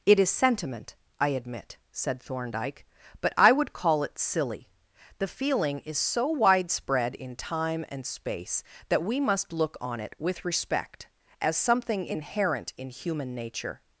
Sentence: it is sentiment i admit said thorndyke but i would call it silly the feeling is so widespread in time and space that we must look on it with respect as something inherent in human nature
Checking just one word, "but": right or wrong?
right